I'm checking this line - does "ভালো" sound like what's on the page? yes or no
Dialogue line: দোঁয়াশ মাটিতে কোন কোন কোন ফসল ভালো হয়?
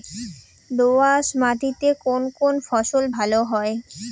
yes